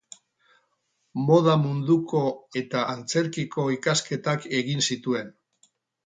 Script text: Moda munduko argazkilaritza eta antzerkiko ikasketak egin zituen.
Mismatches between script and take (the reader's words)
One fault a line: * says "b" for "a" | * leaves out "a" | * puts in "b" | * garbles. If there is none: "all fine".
* leaves out "argazkilaritza"